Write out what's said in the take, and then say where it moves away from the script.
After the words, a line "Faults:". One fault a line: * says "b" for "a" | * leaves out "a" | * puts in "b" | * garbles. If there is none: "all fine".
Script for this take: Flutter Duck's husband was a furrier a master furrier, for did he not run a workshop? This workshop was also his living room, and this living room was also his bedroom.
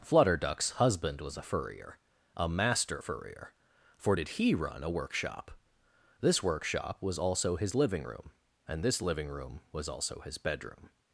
Flutter Duck's husband was a furrier a master furrier, for did he run a workshop? This workshop was also his living room, and this living room was also his bedroom.
Faults:
* leaves out "not"